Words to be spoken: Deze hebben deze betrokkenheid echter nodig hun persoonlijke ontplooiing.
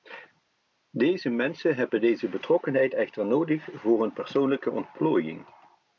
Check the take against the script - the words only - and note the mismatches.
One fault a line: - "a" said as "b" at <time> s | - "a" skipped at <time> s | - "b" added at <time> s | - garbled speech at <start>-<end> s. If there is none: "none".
- "mensen" added at 1.3 s
- "voor" added at 3.7 s